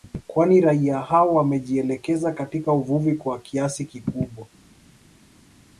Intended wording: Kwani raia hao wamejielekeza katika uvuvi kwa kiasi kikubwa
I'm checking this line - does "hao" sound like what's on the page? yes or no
yes